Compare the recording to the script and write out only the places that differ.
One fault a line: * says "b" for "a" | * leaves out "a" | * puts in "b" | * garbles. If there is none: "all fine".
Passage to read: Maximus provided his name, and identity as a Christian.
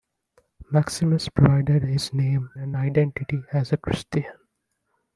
all fine